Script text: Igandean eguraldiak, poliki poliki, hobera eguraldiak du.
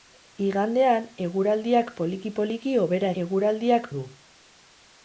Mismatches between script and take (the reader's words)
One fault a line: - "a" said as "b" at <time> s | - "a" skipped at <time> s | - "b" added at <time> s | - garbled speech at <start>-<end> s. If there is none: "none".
none